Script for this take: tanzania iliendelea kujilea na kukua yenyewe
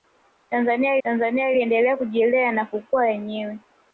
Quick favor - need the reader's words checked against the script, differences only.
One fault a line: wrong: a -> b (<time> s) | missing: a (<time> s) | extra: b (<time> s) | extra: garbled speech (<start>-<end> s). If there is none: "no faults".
extra: tanzania (1.0 s)